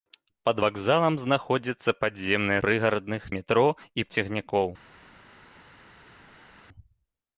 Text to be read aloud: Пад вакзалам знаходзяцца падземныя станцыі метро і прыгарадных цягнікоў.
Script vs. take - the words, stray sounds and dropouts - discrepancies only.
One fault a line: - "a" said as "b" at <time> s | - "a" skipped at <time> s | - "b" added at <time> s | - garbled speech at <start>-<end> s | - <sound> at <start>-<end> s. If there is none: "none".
- "станцыі" said as "прыгарадных" at 2.7 s
- "прыгарадных" skipped at 4.1 s